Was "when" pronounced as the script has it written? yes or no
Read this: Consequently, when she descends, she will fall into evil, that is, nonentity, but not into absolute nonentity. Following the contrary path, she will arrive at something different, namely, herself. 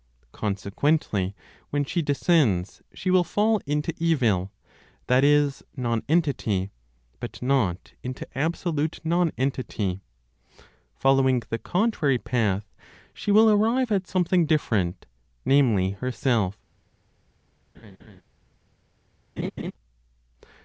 yes